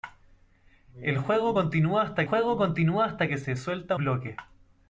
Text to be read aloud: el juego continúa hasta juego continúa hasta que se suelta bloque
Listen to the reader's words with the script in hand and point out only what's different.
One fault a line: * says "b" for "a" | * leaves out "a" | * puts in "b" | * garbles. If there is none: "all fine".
all fine